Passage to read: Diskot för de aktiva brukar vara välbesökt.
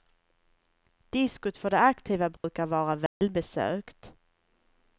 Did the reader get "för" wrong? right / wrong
right